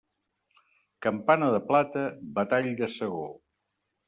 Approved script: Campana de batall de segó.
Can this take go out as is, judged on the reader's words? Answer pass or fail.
fail